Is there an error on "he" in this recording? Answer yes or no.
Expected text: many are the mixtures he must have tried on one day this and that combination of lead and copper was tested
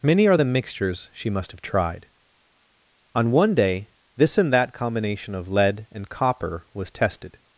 yes